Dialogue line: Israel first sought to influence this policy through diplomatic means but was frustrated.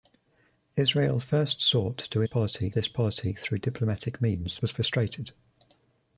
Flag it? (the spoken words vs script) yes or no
yes